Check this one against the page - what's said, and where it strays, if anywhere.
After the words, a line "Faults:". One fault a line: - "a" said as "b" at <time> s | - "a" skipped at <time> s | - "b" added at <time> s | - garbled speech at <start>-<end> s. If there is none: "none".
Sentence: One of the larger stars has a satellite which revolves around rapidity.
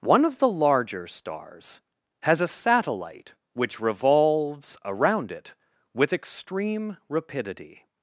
One of the larger stars has a satellite which revolves around it with extreme rapidity.
Faults:
- "it with extreme" added at 5.3 s